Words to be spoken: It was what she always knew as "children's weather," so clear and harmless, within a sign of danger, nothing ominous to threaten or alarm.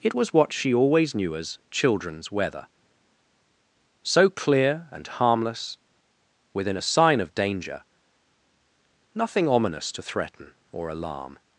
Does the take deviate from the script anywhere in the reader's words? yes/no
no